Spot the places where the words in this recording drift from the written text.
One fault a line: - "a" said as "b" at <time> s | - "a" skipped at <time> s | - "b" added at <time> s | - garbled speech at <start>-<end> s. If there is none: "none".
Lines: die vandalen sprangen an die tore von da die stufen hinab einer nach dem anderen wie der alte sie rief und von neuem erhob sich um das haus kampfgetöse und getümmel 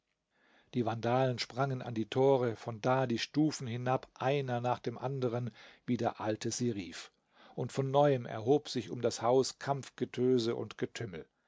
none